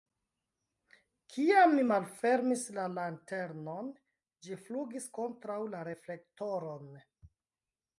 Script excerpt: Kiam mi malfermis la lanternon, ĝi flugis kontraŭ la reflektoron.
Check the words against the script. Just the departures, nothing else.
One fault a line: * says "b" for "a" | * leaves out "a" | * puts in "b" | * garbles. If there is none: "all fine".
all fine